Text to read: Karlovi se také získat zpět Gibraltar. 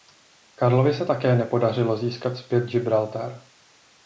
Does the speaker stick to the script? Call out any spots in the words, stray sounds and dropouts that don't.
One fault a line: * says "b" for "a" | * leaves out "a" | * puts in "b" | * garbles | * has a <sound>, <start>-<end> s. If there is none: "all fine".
* puts in "nepodařilo"